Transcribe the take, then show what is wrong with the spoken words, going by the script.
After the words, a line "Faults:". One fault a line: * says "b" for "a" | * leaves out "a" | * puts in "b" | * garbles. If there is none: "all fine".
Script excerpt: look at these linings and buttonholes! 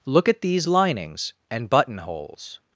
look at these linings and buttonholes!
Faults:
all fine